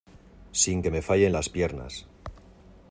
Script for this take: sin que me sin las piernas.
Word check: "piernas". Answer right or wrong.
right